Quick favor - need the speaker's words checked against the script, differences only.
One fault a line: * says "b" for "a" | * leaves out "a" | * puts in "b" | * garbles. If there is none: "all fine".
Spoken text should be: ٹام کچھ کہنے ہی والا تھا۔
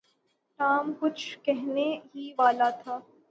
all fine